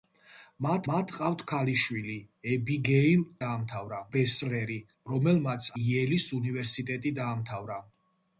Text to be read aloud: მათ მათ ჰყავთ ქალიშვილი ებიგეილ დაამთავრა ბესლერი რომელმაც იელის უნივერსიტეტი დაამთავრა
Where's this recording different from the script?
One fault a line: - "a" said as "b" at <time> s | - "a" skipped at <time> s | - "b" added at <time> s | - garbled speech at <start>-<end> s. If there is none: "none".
none